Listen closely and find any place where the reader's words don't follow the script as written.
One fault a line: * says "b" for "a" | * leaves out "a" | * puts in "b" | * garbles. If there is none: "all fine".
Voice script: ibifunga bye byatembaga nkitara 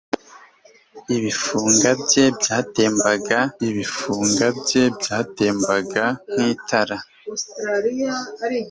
* puts in "ibifunga bye byatembaga"